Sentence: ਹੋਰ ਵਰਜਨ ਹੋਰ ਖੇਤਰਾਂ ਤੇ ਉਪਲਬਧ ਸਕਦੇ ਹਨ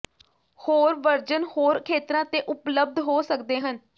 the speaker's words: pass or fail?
fail